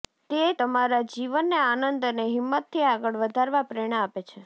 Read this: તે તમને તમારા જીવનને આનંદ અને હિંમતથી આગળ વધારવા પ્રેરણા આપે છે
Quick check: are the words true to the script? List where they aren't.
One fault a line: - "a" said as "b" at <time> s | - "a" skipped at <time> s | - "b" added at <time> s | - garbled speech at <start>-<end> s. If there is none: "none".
- "તમને" skipped at 0.4 s